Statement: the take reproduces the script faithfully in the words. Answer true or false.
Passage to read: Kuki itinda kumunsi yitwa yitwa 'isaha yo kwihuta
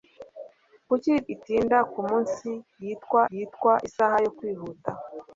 true